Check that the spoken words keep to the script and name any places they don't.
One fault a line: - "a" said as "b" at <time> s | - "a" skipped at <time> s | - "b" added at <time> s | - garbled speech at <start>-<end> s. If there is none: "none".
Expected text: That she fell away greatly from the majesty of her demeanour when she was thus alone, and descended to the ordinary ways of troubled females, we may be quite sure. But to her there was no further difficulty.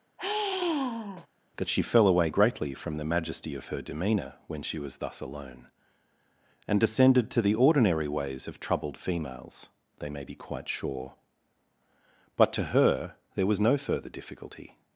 - "we" said as "they" at 10.0 s